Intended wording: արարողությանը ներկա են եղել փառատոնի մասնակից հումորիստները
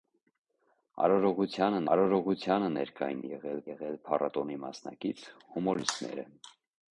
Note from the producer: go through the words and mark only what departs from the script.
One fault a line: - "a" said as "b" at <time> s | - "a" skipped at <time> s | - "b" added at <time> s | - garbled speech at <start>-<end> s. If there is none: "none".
- "արարողությանը" added at 1.9 s
- "եղել" added at 3.7 s